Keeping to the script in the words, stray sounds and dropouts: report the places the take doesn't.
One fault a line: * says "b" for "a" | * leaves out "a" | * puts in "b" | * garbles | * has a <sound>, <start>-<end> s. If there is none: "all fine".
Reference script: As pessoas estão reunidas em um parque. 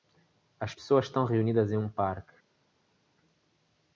all fine